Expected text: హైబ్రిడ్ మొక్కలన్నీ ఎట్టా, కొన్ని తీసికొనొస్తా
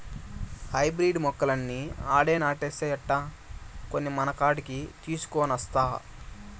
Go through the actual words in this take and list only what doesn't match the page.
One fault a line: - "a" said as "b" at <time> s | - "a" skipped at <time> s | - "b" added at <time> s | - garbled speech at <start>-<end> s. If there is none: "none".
- "ఆడే నాటేస్తే" added at 2.1 s
- "మనకాడికి" added at 4.1 s